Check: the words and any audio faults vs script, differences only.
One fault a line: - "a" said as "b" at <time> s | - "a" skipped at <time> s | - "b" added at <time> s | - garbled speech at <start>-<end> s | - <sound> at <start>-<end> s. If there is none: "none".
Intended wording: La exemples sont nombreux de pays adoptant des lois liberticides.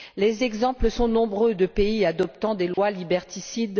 - "La" said as "Les" at 0.2 s
- dropout at 2.7-2.8 s